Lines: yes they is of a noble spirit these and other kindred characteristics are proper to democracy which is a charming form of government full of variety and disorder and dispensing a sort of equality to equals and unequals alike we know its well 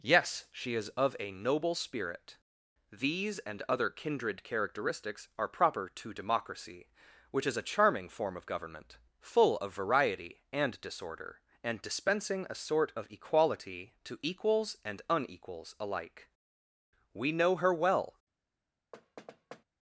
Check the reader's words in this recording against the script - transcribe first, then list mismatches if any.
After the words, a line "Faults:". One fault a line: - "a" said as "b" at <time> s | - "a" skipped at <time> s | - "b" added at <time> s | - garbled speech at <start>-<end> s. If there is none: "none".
yes she is of a noble spirit these and other kindred characteristics are proper to democracy which is a charming form of government full of variety and disorder and dispensing a sort of equality to equals and unequals alike we know her well
Faults:
- "they" said as "she" at 0.5 s
- "its" said as "her" at 17.6 s